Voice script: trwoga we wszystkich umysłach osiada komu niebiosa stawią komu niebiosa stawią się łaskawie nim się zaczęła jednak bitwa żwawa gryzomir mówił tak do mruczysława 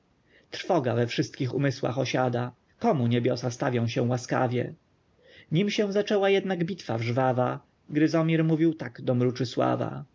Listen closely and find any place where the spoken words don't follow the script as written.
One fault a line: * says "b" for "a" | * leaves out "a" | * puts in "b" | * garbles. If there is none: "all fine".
* leaves out "komu niebiosa stawią"